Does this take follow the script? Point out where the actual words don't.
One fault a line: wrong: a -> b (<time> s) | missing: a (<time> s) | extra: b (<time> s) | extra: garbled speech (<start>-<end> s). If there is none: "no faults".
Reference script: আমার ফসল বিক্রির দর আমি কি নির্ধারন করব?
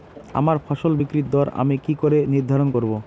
extra: করে (2.0 s)